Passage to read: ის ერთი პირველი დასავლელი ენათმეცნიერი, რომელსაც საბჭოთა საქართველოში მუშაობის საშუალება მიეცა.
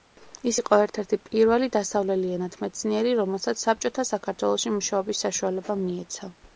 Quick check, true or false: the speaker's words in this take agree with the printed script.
false